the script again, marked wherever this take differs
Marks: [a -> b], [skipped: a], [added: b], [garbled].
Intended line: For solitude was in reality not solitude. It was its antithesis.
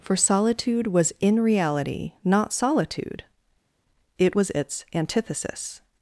For solitude was in reality not solitude. It was its antithesis.